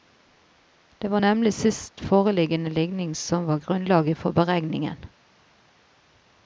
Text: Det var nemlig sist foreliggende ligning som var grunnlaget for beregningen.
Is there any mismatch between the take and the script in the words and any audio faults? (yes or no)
no